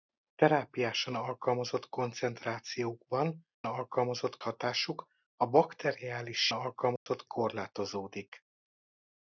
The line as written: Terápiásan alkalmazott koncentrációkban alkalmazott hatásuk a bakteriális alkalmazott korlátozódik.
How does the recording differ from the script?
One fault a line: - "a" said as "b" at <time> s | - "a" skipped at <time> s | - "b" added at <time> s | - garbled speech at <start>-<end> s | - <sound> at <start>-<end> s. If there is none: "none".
- dropout at 7.0-7.1 s